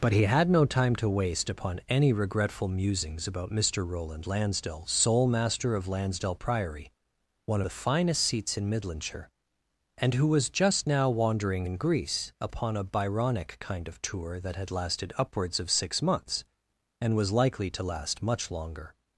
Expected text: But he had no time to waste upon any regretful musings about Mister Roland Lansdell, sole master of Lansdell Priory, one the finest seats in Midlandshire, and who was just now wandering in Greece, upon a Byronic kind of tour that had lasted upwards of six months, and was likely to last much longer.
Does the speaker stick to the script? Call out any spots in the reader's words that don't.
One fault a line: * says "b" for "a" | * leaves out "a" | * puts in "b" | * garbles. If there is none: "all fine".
all fine